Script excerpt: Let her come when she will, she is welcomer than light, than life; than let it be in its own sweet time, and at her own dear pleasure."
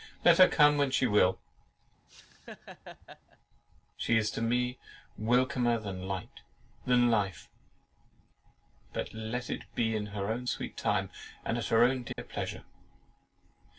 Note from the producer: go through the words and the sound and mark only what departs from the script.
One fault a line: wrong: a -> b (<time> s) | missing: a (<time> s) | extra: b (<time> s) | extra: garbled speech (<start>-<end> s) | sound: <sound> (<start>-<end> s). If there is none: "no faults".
sound: laugh (2.1-3.4 s)
extra: to me (4.3 s)
wrong: than -> but (8.9 s)
wrong: its -> her (10.1 s)
sound: dropout (12.1-12.2 s)